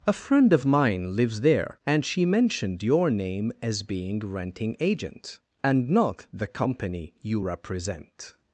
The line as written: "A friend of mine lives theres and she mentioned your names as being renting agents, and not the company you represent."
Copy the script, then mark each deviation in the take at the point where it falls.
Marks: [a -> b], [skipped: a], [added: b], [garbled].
"A friend of mine lives [theres -> there] and she mentioned your [names -> name] as being renting [agents, -> agent] and not the company you represent."